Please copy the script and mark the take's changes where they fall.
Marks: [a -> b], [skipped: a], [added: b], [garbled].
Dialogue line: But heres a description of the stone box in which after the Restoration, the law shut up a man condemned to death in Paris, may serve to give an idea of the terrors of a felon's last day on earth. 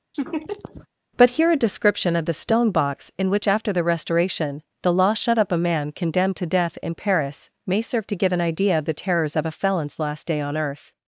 But [heres -> here] a description of the stone box in which after the Restoration, the law shut up a man condemned to death in Paris, may serve to give an idea of the terrors of a felon's last day on earth.